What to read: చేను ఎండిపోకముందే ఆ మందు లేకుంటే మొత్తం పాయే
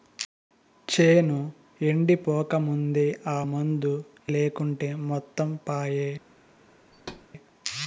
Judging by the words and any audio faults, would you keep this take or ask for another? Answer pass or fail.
fail